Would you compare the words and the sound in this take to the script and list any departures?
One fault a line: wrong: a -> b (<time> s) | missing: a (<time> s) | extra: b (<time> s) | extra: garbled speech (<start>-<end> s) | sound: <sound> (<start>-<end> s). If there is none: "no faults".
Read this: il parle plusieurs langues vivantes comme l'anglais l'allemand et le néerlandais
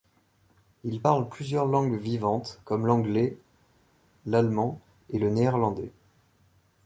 no faults